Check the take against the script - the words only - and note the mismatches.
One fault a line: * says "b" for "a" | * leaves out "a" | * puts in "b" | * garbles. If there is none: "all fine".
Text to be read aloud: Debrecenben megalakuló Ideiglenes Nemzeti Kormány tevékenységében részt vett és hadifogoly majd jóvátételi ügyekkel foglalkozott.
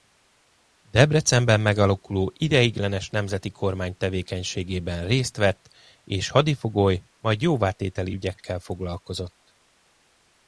all fine